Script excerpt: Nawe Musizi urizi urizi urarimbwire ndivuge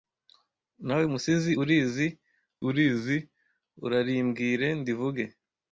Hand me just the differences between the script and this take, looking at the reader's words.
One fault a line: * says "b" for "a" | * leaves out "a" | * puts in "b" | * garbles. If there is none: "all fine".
all fine